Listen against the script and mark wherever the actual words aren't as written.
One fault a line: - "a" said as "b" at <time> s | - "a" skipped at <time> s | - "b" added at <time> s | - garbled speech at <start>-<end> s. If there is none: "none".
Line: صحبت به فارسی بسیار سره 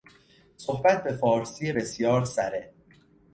none